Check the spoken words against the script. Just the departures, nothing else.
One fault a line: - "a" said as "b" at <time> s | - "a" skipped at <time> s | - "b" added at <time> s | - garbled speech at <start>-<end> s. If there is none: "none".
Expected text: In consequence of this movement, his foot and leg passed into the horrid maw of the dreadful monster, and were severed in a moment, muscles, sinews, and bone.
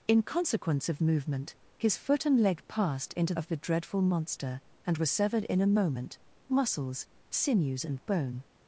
- "this" skipped at 1.0 s
- "the horrid maw" skipped at 3.3 s